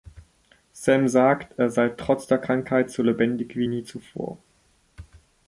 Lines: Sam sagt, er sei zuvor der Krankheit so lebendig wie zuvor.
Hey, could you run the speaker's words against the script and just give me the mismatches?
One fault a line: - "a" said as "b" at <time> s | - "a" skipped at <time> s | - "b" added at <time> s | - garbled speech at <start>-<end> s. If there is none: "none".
- "zuvor" said as "trotz" at 1.9 s
- "nie" added at 3.6 s